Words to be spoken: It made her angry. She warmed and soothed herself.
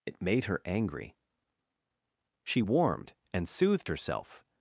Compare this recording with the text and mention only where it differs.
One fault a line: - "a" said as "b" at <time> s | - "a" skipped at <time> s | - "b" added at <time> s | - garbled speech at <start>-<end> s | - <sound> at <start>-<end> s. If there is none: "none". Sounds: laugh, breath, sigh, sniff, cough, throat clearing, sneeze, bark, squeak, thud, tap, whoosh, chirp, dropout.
none